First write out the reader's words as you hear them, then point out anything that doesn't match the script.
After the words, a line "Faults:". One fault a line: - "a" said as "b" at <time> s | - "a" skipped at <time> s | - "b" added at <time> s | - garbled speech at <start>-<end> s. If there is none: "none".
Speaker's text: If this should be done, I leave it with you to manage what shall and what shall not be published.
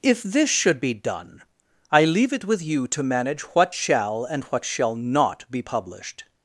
If this should be done, I leave it with you to manage what shall and what shall not be published.
Faults:
none